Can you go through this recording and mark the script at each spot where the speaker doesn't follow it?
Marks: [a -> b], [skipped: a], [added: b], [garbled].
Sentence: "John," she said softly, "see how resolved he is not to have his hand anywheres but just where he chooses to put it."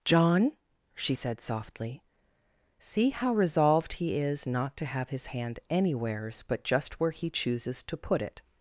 "John," she said softly, "see how resolved he is not to have his hand anywheres but just where he chooses to put it."